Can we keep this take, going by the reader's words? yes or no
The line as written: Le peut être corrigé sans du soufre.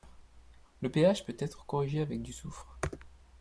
no